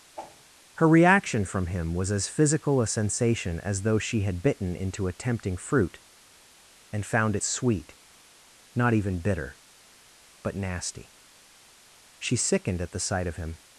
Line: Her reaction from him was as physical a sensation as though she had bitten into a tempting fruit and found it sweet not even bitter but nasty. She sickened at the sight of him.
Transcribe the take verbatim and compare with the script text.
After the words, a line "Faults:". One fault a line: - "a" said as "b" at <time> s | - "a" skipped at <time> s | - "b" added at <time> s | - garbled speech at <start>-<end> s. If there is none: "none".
Her reaction from him was as physical a sensation as though she had bitten into a tempting fruit and found it sweet not even bitter but nasty. She sickened at the sight of him.
Faults:
none